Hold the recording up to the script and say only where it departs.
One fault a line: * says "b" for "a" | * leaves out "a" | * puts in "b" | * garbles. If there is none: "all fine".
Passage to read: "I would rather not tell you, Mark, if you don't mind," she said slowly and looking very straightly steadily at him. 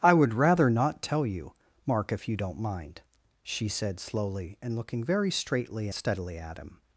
all fine